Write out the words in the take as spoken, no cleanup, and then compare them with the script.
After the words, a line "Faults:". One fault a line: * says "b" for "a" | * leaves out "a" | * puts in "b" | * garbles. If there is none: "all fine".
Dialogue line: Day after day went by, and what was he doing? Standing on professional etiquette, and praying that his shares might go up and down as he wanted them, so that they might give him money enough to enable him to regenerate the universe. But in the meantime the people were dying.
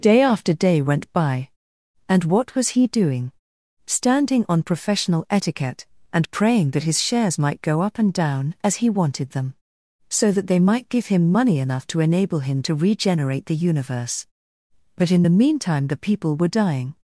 Day after day went by, and what was he doing? Standing on professional etiquette, and praying that his shares might go up and down as he wanted them, so that they might give him money enough to enable him to regenerate the universe. But in the meantime the people were dying.
Faults:
all fine